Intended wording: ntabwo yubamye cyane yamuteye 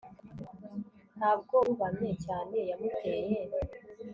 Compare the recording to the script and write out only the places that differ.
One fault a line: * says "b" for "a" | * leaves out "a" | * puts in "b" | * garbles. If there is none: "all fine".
all fine